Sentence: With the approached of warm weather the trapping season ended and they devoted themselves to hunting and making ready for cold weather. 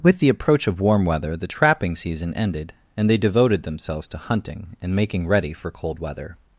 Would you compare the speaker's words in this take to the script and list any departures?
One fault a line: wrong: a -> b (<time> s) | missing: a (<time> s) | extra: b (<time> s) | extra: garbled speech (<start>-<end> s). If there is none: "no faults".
wrong: approached -> approach (0.3 s)